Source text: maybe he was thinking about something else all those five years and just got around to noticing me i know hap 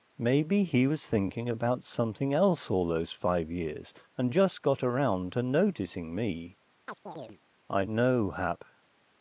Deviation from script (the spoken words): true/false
false